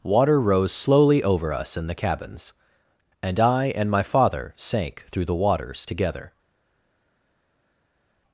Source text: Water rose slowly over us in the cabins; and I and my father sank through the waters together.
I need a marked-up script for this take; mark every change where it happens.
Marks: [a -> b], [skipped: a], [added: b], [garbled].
Water rose slowly over us in the cabins; and I and my father sank through the waters together.